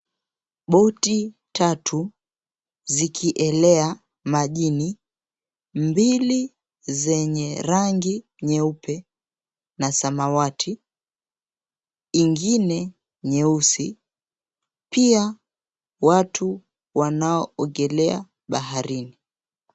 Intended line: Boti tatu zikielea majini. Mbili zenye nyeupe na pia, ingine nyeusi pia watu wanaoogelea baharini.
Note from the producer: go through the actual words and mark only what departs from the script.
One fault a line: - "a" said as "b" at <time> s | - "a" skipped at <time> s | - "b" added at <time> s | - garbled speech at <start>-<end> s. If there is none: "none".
- "rangi" added at 7.6 s
- "pia" said as "samawati" at 9.9 s